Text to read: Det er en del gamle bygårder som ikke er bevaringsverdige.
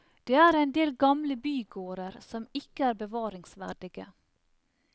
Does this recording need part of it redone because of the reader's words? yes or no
no